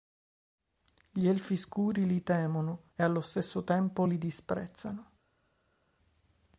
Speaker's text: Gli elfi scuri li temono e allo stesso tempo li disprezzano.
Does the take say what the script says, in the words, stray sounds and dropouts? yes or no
yes